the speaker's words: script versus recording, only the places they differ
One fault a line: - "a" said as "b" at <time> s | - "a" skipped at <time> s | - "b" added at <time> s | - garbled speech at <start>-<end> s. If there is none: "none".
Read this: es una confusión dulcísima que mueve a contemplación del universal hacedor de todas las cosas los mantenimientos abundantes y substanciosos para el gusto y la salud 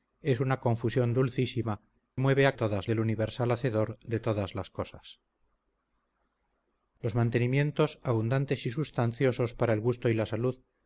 - "que" skipped at 1.8 s
- "contemplación" said as "todas" at 2.5 s